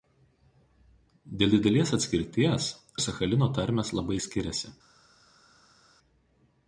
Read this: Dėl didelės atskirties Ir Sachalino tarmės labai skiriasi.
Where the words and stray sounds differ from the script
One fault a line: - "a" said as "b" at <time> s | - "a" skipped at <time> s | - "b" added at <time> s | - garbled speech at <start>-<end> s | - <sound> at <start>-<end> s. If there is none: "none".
none